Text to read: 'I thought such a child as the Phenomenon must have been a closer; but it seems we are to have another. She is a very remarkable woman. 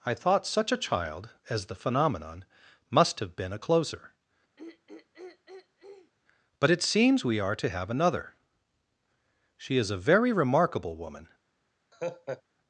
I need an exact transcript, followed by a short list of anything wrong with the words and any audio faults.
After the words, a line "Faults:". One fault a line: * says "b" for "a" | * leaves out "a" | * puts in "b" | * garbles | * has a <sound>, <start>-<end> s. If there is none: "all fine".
'I thought such a child as the Phenomenon must have been a closer; but it seems we are to have another. She is a very remarkable woman.
Faults:
* has a throat clearing, 4.6-6.1 s
* has a laugh, 11.9-12.4 s